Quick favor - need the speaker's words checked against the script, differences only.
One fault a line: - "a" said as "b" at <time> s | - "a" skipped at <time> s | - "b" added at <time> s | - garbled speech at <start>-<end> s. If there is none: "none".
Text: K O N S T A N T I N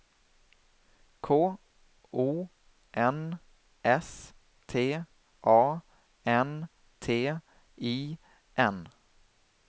none